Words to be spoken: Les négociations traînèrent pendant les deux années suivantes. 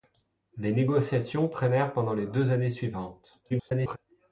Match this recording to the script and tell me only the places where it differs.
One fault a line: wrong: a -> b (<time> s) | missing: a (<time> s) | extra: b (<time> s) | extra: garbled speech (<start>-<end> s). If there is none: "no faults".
extra: garbled speech (3.5-4.0 s)